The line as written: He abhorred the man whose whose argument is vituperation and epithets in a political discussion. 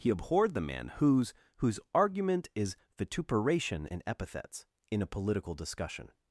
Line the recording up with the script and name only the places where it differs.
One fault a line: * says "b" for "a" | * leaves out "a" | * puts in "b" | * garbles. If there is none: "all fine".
all fine